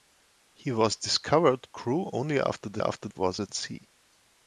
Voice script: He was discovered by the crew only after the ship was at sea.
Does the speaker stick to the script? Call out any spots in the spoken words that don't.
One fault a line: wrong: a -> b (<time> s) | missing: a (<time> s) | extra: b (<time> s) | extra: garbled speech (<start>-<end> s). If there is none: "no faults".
missing: by the (1.7 s)
wrong: ship -> after (2.8 s)